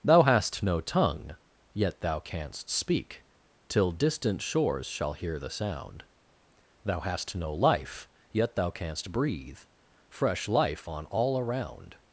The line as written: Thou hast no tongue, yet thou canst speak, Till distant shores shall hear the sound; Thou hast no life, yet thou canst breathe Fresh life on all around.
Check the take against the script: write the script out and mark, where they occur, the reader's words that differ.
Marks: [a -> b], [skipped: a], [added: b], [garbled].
Thou hast no tongue, yet thou canst speak, Till distant shores shall hear the sound; Thou hast no life, yet thou canst breathe Fresh life on all around.